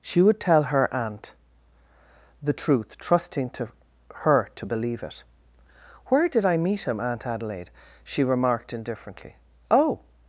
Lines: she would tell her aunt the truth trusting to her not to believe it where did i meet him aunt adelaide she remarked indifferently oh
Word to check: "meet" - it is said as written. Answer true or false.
true